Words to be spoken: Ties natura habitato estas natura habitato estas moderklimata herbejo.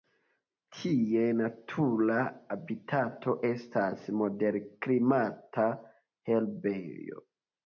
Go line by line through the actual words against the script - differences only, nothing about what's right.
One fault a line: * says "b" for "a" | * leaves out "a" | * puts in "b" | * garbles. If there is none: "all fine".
* leaves out "natura habitato estas"